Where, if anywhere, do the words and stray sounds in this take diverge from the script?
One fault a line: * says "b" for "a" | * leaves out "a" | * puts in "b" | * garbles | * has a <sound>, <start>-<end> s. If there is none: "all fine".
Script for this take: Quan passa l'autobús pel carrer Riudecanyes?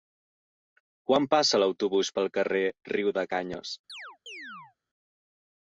* has a chirp, 3.9-4.8 s